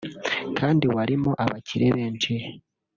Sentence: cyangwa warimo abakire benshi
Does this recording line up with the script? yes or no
no